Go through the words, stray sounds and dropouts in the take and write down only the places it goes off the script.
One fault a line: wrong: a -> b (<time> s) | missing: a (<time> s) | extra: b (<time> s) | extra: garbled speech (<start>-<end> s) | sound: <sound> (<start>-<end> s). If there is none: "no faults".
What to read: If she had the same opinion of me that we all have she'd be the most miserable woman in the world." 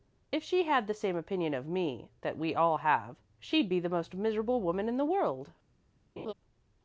sound: laugh (6.2-6.3 s)